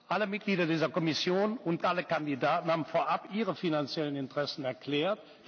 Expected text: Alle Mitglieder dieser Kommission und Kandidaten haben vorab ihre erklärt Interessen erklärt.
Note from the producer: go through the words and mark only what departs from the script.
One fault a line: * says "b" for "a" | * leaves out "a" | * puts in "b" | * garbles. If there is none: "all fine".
* puts in "alle"
* says "finanziellen" for "erklärt"